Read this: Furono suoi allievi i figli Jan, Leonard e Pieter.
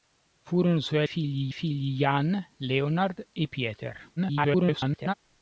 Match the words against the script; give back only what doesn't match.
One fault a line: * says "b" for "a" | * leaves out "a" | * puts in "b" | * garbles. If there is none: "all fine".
* says "figli" for "allievi"
* garbles